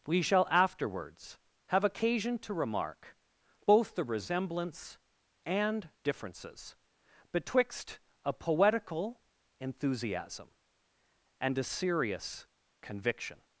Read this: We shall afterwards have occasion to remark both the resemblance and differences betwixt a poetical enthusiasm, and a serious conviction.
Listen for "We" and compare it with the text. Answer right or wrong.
right